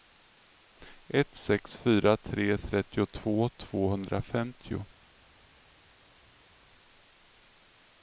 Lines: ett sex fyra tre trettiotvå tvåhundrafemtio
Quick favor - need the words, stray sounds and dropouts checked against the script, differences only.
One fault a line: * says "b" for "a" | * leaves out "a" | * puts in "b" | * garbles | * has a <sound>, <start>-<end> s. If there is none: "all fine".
all fine